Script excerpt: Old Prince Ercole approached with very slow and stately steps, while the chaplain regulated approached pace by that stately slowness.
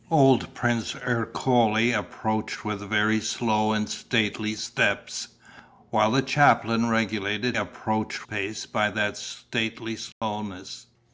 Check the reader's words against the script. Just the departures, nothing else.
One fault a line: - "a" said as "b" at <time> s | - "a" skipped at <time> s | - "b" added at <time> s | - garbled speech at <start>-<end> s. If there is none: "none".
none